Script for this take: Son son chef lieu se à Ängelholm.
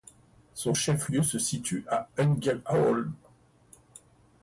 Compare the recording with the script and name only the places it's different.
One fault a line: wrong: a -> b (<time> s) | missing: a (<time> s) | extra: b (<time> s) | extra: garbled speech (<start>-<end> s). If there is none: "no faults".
missing: son (0.7 s)
extra: situe (1.4 s)